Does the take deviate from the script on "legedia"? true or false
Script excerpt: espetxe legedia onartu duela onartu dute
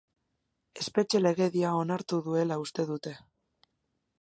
false